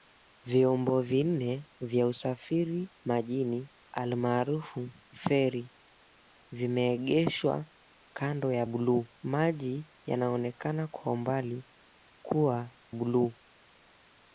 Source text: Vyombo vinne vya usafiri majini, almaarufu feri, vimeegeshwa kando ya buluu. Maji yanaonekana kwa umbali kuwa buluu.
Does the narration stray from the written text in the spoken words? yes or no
no